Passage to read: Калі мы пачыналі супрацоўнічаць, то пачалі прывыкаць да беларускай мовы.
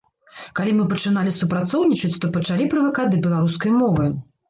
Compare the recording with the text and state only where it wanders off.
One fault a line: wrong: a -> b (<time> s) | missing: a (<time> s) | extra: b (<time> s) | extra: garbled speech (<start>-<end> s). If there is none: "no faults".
no faults